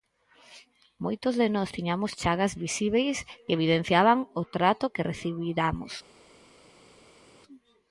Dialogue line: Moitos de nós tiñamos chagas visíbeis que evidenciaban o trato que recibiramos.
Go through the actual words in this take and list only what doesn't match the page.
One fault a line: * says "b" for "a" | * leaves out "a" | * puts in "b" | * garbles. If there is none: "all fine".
all fine